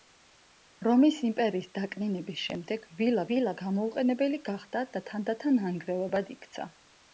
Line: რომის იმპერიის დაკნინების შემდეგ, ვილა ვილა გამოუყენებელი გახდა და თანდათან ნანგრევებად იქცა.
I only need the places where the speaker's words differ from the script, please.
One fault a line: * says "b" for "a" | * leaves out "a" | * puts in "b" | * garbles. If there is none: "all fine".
all fine